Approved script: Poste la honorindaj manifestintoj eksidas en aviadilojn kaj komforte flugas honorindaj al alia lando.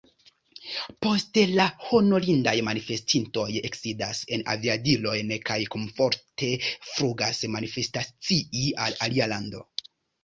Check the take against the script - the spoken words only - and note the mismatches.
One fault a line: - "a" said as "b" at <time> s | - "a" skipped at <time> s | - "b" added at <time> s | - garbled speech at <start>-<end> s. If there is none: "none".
- "honorindaj" said as "manifestacii" at 7.6 s